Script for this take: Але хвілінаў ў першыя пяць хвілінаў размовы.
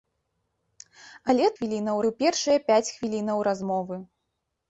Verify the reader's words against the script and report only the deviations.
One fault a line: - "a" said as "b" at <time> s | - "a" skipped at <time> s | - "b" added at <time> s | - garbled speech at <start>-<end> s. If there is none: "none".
none